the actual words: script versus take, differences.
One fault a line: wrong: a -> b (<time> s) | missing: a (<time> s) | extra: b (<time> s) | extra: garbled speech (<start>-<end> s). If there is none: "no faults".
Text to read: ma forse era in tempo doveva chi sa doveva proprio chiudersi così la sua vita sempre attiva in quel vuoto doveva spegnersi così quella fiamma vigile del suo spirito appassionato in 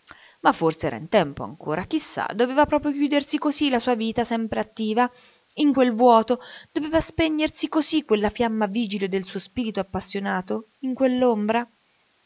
wrong: doveva -> ancora (1.4 s)